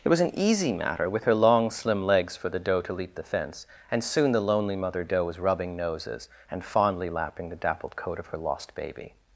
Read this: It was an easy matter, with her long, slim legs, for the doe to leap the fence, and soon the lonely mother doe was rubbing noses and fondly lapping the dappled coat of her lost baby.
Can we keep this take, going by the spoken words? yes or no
yes